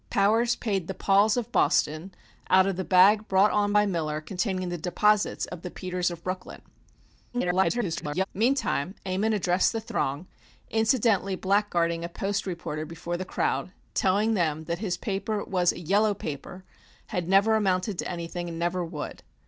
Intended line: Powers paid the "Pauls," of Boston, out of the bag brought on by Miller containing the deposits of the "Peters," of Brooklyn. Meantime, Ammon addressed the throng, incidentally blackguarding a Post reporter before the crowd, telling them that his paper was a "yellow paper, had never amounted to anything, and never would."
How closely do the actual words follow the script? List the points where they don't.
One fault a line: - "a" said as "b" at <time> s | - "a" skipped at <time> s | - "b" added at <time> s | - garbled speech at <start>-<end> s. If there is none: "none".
- garbled speech at 7.3-8.2 s